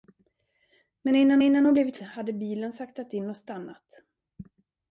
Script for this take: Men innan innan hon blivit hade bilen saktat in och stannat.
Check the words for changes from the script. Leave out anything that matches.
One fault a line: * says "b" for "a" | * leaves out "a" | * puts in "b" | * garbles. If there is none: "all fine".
all fine